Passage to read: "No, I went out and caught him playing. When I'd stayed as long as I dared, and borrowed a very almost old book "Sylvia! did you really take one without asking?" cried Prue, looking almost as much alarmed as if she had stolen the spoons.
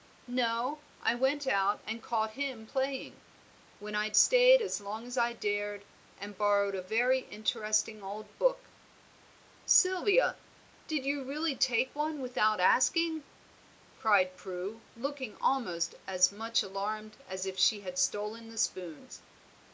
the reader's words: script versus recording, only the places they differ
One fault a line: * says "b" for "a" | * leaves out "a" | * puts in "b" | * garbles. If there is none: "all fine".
* says "interesting" for "almost"